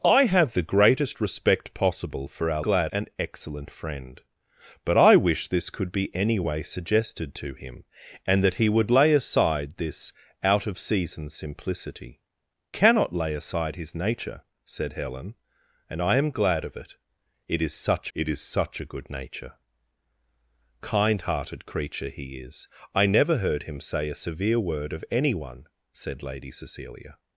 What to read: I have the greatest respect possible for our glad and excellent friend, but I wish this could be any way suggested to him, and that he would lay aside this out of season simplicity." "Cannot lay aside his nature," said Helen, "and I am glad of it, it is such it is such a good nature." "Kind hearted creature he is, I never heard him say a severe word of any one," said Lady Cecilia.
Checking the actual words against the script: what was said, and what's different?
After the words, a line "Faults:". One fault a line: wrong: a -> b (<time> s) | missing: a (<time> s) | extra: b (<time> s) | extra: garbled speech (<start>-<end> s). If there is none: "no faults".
I have the greatest respect possible for our glad and excellent friend, but I wish this could be any way suggested to him, and that he would lay aside this out of season simplicity." "Cannot lay aside his nature," said Helen, "and I am glad of it, it is such it is such a good nature." "Kind hearted creature he is, I never heard him say a severe word of any one," said Lady Cecilia.
Faults:
no faults